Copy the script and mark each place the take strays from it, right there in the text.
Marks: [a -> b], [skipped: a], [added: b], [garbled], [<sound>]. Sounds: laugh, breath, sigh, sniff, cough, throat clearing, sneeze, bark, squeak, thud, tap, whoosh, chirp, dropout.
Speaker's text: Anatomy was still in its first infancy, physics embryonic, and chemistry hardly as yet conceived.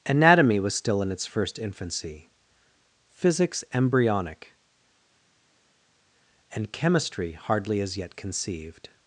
Anatomy was still in its first infancy, physics embryonic, and chemistry hardly as yet conceived.